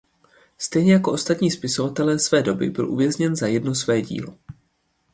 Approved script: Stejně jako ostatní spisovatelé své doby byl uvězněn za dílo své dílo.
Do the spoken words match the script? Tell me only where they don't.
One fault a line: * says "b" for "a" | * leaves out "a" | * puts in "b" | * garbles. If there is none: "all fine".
* says "jedno" for "dílo"